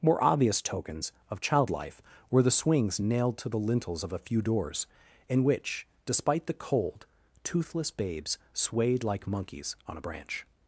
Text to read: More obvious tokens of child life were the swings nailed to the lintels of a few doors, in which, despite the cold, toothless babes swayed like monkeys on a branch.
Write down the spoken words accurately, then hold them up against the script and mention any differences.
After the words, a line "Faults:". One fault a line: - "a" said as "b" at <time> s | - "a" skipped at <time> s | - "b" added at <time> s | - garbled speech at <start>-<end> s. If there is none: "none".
More obvious tokens of child life were the swings nailed to the lintels of a few doors, in which, despite the cold, toothless babes swayed like monkeys on a branch.
Faults:
none